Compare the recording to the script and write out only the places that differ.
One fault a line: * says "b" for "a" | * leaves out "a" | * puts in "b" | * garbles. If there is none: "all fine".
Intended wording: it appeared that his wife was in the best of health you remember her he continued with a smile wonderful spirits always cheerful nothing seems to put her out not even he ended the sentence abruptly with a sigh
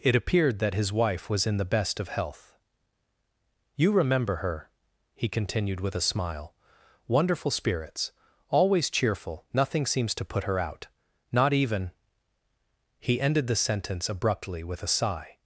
all fine